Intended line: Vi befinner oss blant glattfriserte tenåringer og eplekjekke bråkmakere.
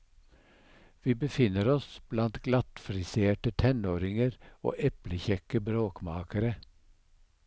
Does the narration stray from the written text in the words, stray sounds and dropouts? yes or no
no